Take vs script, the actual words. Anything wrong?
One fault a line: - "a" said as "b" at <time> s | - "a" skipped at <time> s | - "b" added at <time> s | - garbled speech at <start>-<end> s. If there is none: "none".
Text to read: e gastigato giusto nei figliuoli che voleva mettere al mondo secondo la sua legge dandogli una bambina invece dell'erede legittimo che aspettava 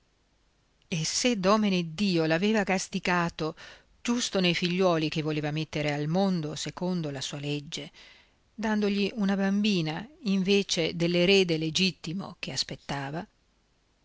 - "se domeneddio l'aveva" added at 1.0 s